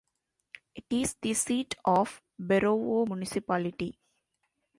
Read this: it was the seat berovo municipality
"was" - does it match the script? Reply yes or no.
no